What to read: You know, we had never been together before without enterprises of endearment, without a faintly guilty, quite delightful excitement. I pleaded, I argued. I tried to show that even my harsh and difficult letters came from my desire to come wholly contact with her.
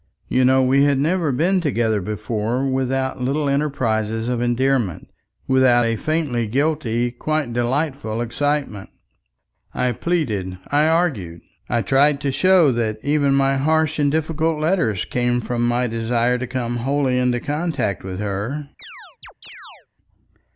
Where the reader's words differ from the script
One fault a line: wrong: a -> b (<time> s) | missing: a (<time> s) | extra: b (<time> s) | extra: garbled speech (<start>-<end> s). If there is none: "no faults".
extra: little (3.2 s)
extra: into (17.2 s)